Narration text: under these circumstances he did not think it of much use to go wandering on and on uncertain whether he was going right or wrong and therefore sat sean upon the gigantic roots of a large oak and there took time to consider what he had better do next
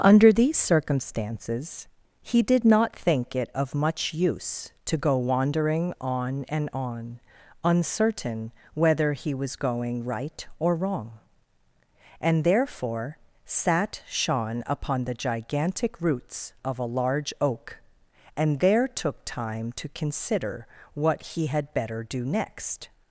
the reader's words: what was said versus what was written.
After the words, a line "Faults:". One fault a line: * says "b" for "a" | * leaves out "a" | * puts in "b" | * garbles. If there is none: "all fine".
under these circumstances he did not think it of much use to go wandering on and on uncertain whether he was going right or wrong and therefore sat sean upon the gigantic roots of a large oak and there took time to consider what he had better do next
Faults:
all fine